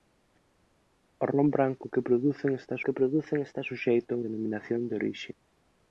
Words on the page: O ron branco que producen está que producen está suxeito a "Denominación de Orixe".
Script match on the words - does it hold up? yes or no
yes